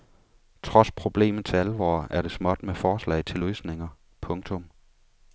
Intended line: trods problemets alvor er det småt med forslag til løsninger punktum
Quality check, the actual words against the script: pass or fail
pass